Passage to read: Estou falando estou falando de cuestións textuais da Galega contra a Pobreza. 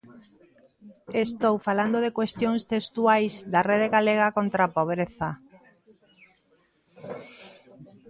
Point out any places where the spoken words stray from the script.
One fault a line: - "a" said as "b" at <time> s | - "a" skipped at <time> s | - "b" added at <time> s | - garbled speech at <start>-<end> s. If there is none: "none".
- "estou falando" skipped at 2.0 s
- "Rede" added at 3.7 s